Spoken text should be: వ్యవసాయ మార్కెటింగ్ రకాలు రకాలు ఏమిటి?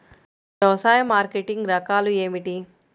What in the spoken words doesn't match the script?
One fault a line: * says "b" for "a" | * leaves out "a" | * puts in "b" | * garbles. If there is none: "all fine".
* leaves out "రకాలు"